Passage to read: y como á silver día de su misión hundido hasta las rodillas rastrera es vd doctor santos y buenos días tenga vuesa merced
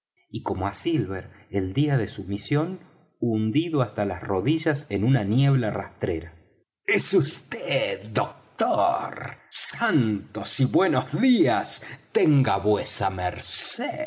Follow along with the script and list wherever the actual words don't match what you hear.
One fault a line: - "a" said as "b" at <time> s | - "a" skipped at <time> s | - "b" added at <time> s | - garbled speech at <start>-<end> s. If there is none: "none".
- "el" added at 1.5 s
- "en una niebla" added at 4.9 s